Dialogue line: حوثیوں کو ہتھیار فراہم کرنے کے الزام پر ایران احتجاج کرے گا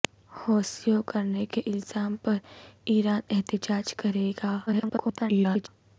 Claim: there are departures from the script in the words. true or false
true